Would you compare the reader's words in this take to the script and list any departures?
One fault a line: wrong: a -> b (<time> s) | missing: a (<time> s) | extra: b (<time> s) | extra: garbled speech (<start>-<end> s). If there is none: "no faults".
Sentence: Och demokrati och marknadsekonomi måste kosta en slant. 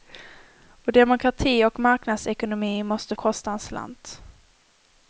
no faults